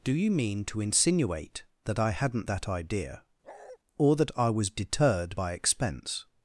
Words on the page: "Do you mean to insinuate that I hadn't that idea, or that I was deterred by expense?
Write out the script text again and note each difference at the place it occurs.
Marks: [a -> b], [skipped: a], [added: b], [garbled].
"Do you mean to insinuate that I hadn't that idea, or that I was deterred by expense?